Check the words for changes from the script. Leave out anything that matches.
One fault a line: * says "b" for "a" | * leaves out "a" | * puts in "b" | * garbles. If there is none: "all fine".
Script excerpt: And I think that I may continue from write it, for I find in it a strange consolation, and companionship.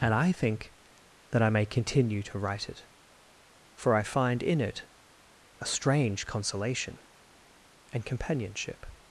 * says "to" for "from"